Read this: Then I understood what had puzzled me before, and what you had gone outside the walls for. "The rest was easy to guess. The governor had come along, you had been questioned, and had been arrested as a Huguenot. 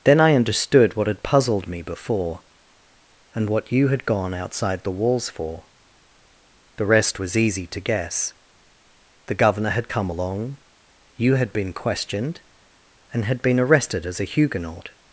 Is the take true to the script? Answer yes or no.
yes